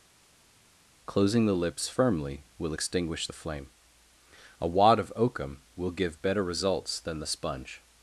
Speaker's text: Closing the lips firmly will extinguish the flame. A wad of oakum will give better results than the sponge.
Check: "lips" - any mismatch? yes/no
no